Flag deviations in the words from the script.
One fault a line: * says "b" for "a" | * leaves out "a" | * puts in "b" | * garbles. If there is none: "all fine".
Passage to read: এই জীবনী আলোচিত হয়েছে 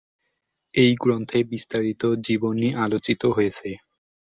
* puts in "গ্রন্থে বিস্তারিত"